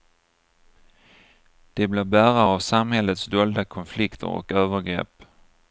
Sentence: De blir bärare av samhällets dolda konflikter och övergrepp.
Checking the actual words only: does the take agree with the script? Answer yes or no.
yes